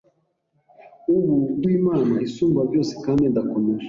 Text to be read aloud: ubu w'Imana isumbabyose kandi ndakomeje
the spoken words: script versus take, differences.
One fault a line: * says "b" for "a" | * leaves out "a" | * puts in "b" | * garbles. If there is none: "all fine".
all fine